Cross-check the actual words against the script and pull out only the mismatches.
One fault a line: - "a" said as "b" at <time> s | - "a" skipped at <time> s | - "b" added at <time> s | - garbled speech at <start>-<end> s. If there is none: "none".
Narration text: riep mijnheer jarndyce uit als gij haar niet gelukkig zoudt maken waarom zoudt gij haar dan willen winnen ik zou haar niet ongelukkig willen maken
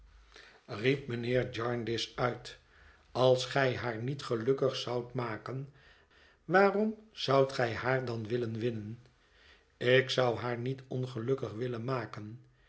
none